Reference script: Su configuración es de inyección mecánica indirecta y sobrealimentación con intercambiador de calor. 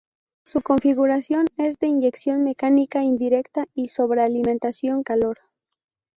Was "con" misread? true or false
true